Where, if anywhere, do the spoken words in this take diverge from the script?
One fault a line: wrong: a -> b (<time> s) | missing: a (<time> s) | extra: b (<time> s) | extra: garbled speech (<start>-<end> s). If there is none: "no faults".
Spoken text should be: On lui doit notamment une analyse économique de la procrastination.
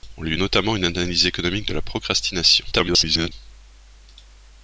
missing: doit (0.3 s)
extra: garbled speech (2.7-3.3 s)